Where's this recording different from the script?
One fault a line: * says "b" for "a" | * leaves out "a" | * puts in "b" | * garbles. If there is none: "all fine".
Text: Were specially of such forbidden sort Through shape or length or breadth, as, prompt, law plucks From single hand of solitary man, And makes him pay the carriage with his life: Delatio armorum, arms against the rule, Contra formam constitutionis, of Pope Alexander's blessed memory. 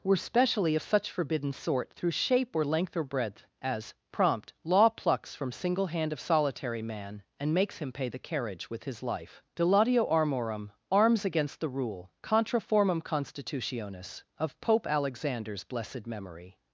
all fine